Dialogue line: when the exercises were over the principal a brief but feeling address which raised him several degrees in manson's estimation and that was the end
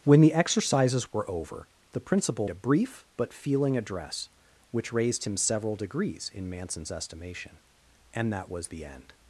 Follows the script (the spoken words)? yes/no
yes